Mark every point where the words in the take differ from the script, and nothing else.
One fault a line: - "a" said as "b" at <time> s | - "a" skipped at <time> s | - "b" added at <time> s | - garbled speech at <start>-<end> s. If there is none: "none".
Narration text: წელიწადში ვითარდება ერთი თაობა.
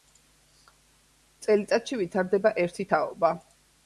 none